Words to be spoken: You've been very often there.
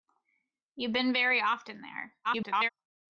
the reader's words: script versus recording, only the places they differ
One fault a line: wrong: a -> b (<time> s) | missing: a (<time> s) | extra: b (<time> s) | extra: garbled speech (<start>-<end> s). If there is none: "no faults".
extra: garbled speech (2.2-2.7 s)